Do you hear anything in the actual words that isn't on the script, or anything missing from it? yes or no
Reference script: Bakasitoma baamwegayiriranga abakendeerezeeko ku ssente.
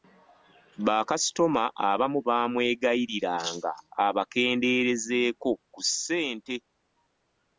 yes